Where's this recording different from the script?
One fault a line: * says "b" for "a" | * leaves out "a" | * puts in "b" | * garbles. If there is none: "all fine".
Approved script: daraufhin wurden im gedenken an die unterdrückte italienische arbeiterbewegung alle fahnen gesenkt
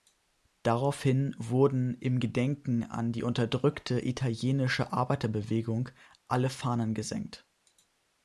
all fine